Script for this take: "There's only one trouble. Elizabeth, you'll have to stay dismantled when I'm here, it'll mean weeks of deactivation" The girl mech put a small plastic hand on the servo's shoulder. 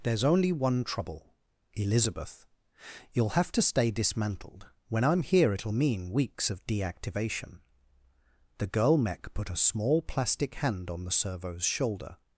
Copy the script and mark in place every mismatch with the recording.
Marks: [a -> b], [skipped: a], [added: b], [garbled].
"There's only one trouble. Elizabeth, you'll have to stay dismantled when I'm here, it'll mean weeks of deactivation" The girl mech put a small plastic hand on the servo's shoulder.